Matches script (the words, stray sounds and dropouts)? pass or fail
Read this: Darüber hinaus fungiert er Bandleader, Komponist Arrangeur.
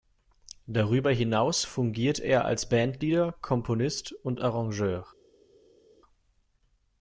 fail